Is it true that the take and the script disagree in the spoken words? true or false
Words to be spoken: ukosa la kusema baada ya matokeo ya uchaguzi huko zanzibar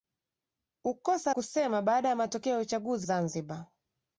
true